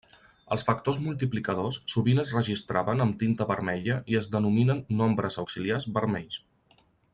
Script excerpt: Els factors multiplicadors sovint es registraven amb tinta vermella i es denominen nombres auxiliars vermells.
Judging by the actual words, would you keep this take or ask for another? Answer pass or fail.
pass